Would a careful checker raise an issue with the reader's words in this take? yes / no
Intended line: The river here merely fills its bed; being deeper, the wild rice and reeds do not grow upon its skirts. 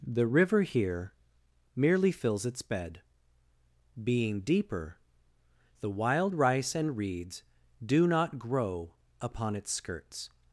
no